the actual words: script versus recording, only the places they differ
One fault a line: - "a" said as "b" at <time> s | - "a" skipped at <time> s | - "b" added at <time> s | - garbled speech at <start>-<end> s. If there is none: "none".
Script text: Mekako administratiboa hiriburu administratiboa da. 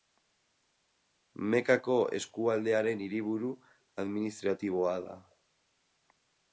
- "administratiboa" said as "eskualdearen" at 2.2 s